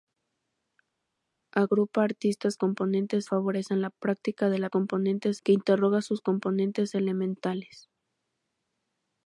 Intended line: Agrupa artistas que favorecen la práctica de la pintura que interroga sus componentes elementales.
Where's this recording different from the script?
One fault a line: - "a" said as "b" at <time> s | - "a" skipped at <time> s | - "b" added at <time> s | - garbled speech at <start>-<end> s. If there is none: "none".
- "que" said as "componentes" at 2.6 s
- "pintura" said as "componentes" at 4.7 s